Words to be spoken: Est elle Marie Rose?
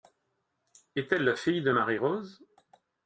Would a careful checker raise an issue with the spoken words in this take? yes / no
yes